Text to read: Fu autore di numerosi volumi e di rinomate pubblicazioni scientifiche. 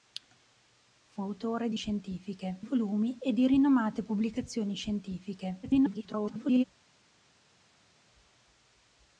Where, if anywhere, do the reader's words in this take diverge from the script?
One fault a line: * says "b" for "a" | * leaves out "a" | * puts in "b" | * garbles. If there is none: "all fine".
* says "scientifiche" for "numerosi"
* garbles